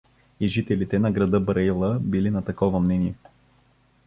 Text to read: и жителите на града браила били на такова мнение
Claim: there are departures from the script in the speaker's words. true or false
false